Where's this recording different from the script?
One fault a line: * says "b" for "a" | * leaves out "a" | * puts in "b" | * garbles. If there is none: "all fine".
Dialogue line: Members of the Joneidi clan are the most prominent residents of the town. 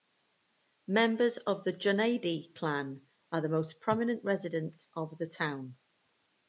all fine